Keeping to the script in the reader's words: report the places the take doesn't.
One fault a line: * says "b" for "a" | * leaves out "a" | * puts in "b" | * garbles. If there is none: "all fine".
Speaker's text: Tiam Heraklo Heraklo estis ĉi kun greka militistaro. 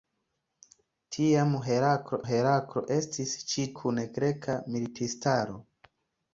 all fine